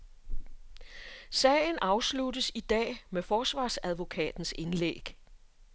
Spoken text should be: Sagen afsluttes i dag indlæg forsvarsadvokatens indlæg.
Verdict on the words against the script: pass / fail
fail